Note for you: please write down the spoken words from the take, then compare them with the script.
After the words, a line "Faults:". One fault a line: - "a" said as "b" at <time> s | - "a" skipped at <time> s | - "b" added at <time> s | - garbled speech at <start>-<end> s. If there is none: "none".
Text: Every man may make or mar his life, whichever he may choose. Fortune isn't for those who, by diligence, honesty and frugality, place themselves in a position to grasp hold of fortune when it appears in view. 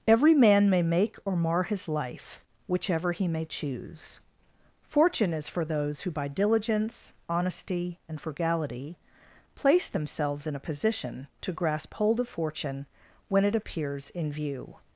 Every man may make or mar his life, whichever he may choose. Fortune is for those who, by diligence, honesty and frugality, place themselves in a position to grasp hold of fortune when it appears in view.
Faults:
- "isn't" said as "is" at 5.3 s